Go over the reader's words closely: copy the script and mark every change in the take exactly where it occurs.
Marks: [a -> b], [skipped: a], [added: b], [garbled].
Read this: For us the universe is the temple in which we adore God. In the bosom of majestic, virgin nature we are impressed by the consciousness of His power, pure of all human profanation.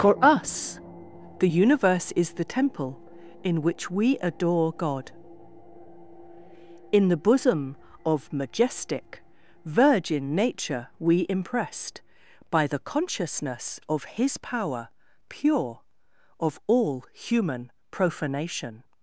For us the universe is the temple in which we adore God. In the bosom of majestic, virgin nature we [skipped: are] impressed by the consciousness of His power, pure of all human profanation.